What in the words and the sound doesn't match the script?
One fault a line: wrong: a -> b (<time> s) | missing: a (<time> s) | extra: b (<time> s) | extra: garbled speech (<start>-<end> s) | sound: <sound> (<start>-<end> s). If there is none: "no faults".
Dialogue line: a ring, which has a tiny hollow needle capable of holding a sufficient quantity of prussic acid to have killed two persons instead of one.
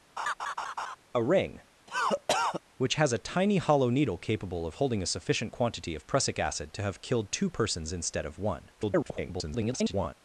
sound: laugh (0.2-1.0 s)
sound: cough (1.9-2.6 s)
extra: garbled speech (8.8-10.1 s)